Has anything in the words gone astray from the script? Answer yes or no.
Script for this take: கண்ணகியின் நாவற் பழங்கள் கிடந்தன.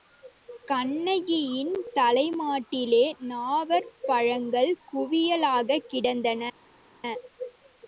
yes